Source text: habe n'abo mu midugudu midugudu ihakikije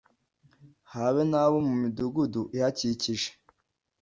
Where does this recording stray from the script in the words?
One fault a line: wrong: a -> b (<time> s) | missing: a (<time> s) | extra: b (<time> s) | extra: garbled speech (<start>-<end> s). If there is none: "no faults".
missing: midugudu (2.4 s)